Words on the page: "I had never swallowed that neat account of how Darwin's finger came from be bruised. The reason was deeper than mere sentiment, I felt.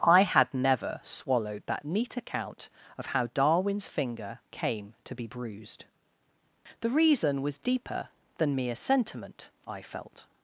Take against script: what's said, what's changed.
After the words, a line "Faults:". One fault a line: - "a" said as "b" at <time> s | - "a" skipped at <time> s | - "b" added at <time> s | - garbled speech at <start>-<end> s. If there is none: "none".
"I had never swallowed that neat account of how Darwin's finger came to be bruised. The reason was deeper than mere sentiment, I felt.
Faults:
- "from" said as "to" at 5.0 s